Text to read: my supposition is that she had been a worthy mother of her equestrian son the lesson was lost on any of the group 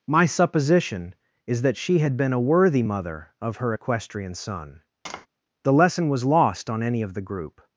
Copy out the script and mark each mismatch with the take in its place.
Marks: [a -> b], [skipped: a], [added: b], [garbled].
my supposition is that she had been a worthy mother of her equestrian son the lesson was lost on any of the group